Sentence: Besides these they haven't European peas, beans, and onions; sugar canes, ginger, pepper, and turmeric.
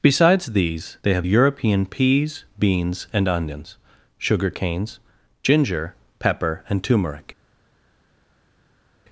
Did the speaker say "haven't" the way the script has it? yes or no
no